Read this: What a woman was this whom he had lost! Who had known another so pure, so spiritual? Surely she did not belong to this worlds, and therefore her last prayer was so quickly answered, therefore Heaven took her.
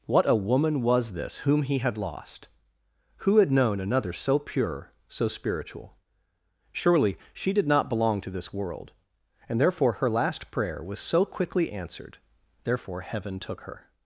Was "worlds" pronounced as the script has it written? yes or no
no